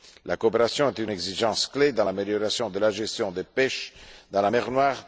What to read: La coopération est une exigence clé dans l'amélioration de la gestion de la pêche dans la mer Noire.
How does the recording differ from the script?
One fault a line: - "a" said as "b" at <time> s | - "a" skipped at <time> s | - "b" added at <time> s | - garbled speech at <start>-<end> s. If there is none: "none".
none